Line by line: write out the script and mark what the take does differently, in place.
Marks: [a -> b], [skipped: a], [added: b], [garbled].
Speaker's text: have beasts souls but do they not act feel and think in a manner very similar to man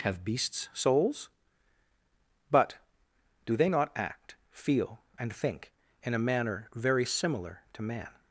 have beasts souls but do they not act feel and think in a manner very similar to man